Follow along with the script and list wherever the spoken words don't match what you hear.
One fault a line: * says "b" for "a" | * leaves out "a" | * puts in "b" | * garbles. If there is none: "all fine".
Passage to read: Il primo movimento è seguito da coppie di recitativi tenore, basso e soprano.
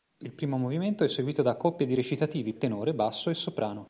all fine